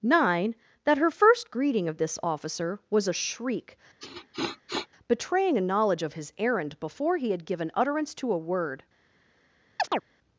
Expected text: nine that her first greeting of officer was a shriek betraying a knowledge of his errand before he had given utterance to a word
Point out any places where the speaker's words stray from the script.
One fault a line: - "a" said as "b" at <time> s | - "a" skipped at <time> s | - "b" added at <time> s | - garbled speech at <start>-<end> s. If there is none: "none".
- "this" added at 2.0 s